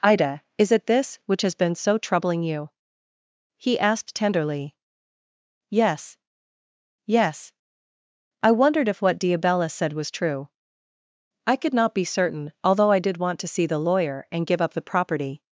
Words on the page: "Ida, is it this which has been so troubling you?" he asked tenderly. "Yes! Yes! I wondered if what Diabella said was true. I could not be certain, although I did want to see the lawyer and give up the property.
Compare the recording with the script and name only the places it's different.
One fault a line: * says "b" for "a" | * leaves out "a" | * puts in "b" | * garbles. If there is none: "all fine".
all fine